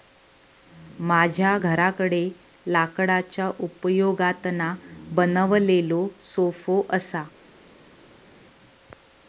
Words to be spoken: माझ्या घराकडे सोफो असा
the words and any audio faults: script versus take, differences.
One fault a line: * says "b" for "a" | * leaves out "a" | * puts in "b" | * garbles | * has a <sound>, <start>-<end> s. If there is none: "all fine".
* puts in "लाकडाच्या उपयोगातना बनवलेलो"